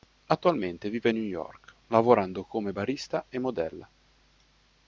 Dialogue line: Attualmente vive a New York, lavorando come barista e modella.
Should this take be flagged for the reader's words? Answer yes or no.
no